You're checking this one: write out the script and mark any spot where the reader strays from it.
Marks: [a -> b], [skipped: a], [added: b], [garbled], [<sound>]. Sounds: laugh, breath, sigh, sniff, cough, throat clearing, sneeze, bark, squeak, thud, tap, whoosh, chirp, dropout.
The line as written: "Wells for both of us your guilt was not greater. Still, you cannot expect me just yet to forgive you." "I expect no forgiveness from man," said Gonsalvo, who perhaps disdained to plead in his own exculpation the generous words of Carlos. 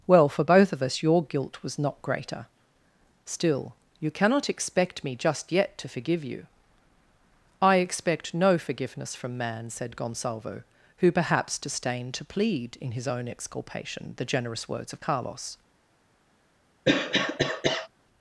["Wells -> Well] for both of us your guilt was not greater. Still, you cannot expect me just yet to forgive you." "I expect no forgiveness from man," said Gonsalvo, who perhaps disdained to plead in his own exculpation the generous words of Carlos. [cough]